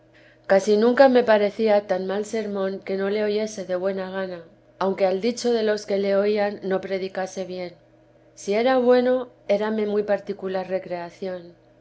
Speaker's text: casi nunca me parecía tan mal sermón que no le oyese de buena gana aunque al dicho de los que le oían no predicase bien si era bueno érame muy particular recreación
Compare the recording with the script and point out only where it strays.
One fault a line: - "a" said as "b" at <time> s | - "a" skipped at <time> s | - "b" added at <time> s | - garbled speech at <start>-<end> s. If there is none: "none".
none